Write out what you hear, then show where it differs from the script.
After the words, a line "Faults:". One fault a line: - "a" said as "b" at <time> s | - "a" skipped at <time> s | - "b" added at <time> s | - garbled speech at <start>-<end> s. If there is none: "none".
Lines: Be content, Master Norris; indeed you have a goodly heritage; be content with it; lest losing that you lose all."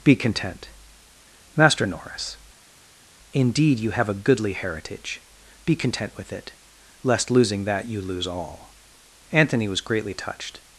Be content, Master Norris; indeed you have a goodly heritage; be content with it; lest losing that you lose all." Anthony was greatly touched
Faults:
- "Anthony was greatly touched" added at 9.3 s